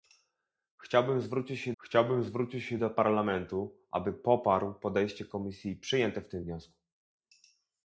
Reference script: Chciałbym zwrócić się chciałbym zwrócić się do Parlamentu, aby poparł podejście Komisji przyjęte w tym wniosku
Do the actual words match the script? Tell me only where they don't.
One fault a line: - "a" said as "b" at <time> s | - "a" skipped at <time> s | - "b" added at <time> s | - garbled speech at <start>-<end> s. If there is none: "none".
none